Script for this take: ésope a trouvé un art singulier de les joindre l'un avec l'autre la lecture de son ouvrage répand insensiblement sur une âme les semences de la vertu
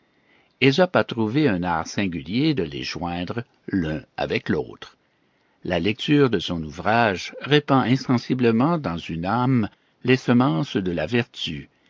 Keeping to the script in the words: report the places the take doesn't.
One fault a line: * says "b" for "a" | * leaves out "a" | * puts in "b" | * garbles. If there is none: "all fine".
* says "dans" for "sur"